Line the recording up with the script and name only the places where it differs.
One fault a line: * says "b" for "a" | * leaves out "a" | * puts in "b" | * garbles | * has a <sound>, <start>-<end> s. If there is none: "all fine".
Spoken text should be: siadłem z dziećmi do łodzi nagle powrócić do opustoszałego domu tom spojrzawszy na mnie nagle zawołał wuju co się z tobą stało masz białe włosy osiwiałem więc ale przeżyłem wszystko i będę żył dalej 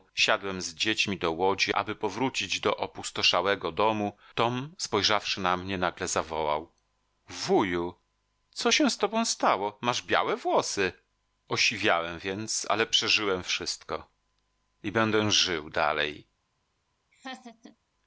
* says "aby" for "nagle"
* has a laugh, 17.1-17.8 s